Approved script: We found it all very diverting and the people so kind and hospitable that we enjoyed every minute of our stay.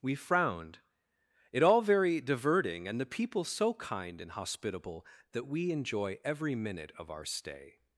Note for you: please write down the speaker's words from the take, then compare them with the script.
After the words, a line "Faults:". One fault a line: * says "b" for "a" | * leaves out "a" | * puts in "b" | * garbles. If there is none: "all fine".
We frowned it all very diverting and the people so kind and hospitable that we enjoy every minute of our stay.
Faults:
* says "frowned" for "found"
* says "enjoy" for "enjoyed"